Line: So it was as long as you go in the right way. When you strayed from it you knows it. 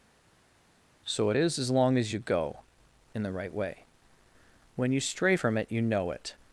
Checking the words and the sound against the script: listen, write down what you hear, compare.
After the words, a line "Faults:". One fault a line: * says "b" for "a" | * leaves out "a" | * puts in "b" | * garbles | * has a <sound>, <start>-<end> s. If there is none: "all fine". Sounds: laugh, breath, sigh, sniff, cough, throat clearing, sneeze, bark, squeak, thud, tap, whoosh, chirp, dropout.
So it is as long as you go in the right way. When you stray from it you know it.
Faults:
* says "is" for "was"
* says "stray" for "strayed"
* says "know" for "knows"